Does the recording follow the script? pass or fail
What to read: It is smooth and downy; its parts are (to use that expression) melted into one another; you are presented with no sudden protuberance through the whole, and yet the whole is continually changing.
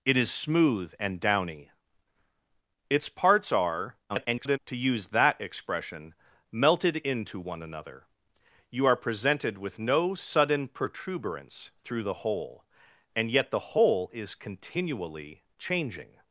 fail